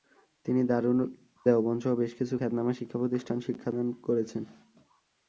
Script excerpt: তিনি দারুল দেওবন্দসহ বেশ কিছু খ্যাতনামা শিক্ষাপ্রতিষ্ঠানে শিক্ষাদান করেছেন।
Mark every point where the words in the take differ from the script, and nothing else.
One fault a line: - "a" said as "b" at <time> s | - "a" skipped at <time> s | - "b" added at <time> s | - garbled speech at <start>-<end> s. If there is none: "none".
none